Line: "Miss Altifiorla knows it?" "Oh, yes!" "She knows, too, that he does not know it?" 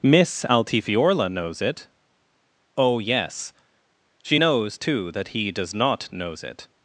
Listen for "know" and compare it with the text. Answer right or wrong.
wrong